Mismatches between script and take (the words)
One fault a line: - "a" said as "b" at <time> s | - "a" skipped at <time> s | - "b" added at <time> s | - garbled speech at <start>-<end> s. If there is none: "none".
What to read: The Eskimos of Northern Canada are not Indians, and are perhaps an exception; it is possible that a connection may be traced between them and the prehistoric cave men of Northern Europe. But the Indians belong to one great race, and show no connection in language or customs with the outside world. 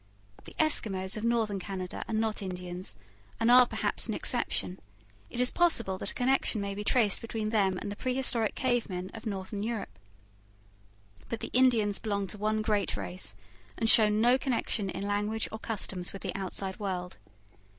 none